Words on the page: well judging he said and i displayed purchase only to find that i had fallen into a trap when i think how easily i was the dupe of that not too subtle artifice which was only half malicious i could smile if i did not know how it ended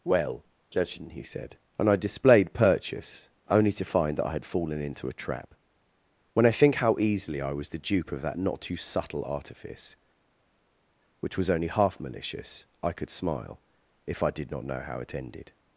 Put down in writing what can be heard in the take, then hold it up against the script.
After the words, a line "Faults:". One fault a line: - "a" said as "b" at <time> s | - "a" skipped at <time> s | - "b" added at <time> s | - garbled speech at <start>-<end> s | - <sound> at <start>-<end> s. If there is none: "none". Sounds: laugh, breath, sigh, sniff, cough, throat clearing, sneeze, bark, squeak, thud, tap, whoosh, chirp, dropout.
well judging he said and i displayed purchase only to find that i had fallen into a trap when i think how easily i was the dupe of that not too subtle artifice which was only half malicious i could smile if i did not know how it ended
Faults:
none